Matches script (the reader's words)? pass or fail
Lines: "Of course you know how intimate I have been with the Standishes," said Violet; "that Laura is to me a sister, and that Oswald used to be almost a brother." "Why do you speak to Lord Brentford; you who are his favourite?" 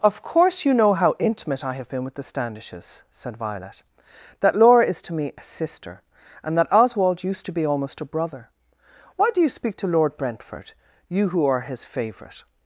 pass